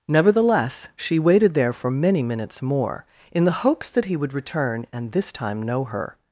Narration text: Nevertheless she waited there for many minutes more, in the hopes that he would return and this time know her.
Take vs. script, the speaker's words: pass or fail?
pass